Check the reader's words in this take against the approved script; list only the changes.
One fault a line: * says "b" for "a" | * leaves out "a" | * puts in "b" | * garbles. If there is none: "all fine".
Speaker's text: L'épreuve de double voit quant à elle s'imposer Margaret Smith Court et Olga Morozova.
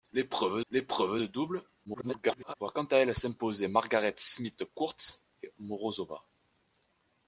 * puts in "l'épreuve"
* garbles
* leaves out "Olga"